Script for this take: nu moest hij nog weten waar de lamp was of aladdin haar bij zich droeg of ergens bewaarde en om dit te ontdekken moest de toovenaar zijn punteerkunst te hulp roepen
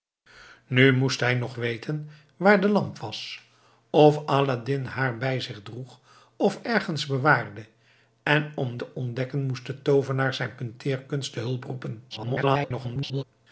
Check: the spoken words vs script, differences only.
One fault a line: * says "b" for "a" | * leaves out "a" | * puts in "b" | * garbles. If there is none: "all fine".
* leaves out "dit"
* garbles